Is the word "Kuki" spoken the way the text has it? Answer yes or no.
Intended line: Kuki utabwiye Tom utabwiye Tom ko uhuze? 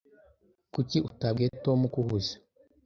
yes